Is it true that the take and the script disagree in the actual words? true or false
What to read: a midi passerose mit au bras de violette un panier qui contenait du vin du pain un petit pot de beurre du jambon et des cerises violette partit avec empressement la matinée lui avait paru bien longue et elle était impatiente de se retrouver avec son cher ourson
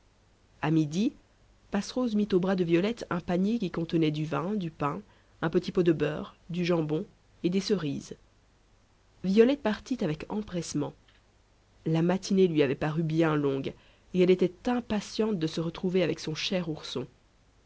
false